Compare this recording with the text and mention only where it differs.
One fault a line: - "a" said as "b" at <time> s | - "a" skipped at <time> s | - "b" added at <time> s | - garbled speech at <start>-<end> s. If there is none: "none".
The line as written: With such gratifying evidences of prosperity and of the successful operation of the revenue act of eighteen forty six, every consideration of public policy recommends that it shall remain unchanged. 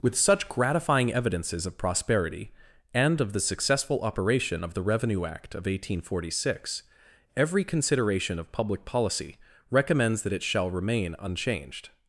none